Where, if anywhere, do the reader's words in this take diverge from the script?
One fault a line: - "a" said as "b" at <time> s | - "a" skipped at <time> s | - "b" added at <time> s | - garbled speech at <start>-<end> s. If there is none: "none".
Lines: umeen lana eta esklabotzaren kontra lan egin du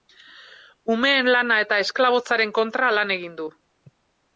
none